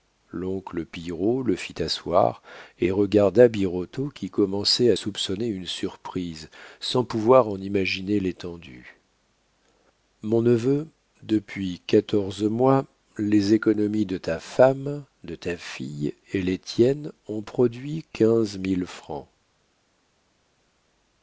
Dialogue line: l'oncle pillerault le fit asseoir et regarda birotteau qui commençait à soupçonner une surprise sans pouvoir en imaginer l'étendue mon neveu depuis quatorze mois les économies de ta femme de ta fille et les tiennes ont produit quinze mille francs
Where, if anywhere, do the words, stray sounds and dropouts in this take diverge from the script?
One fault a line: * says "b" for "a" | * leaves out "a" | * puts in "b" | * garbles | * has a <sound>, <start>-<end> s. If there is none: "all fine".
all fine